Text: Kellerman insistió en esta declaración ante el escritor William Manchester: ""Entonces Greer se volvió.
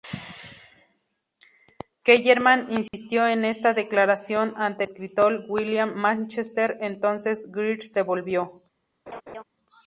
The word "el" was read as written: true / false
false